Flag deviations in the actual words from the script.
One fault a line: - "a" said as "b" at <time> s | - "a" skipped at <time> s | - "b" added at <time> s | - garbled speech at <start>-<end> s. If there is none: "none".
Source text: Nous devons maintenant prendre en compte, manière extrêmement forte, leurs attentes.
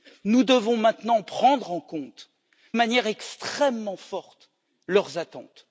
none